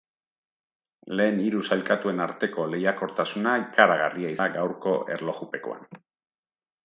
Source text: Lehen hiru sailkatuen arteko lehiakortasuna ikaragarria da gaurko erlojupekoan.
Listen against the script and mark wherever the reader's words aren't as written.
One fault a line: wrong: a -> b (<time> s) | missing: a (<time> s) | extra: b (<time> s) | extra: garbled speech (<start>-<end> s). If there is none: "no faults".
no faults